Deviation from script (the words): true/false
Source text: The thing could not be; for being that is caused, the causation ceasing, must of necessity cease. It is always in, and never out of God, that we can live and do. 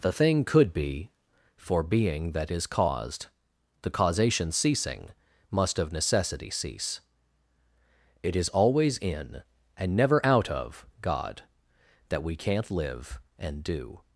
true